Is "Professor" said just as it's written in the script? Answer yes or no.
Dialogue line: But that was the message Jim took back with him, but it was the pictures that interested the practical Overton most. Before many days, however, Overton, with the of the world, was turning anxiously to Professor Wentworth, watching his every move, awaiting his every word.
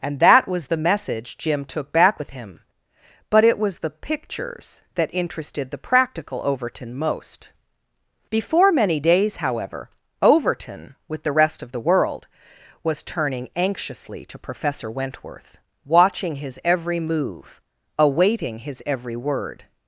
yes